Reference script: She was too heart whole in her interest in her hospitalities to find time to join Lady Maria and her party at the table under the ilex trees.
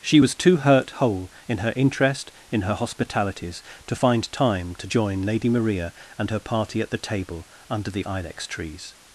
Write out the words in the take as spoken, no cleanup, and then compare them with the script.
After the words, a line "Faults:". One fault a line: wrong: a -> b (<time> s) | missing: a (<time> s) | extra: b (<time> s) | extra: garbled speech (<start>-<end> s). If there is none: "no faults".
She was too hurt whole in her interest in her hospitalities to find time to join Lady Maria and her party at the table under the ilex trees.
Faults:
wrong: heart -> hurt (0.6 s)